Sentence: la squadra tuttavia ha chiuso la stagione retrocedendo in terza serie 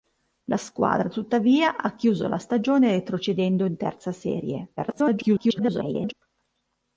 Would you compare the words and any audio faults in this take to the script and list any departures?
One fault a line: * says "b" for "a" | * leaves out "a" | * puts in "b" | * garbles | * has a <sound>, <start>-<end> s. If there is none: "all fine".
* garbles